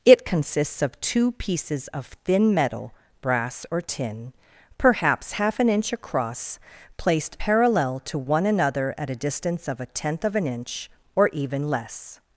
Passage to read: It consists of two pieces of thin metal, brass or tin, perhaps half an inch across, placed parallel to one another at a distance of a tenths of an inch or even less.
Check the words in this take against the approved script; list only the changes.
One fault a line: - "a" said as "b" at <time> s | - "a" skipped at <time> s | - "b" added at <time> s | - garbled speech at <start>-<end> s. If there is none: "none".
- "tenths" said as "tenth" at 9.9 s